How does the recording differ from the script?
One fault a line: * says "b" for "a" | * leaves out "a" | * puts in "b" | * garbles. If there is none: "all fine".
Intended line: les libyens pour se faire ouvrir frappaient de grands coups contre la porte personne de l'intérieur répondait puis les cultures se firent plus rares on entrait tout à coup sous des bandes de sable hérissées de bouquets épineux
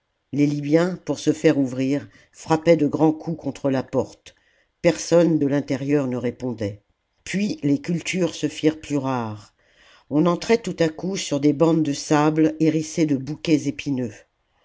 * puts in "ne"
* says "sur" for "sous"